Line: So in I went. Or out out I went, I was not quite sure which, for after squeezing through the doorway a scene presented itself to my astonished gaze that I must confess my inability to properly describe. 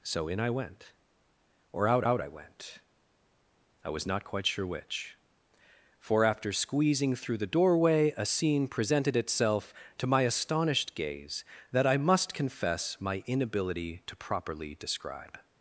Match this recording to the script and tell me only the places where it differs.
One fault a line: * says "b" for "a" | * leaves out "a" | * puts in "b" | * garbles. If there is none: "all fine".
all fine